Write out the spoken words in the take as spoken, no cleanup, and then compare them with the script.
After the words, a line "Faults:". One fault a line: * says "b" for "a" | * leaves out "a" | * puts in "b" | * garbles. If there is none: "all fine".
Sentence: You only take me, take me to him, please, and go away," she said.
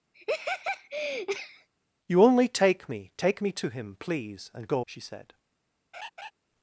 You only take me, take me to him, please, and go," she said.
Faults:
* leaves out "away"